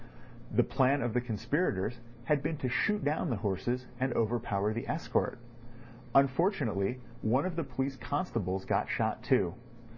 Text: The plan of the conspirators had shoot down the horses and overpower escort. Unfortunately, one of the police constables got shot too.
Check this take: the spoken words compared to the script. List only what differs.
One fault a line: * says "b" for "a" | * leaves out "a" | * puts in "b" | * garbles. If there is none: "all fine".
* puts in "been to"
* puts in "the"